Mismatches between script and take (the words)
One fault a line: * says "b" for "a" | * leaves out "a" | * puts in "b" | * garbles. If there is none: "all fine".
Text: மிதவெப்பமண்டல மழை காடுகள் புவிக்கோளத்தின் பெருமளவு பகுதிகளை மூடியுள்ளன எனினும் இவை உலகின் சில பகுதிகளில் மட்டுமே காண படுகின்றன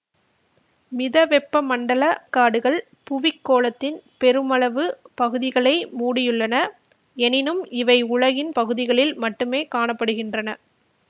* leaves out "மழை"
* leaves out "சில"